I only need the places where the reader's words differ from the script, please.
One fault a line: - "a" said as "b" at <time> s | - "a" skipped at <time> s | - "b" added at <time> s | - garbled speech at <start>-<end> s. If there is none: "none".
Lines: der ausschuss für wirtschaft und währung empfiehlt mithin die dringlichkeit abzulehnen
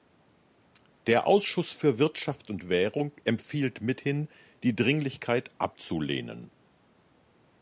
none